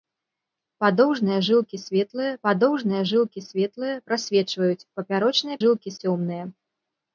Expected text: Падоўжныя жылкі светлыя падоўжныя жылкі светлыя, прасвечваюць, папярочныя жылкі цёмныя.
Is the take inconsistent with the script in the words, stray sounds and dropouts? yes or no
no